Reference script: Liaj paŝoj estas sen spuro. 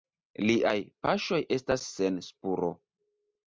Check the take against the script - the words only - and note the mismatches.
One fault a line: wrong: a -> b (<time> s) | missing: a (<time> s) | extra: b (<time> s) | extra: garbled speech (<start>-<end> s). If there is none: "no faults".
no faults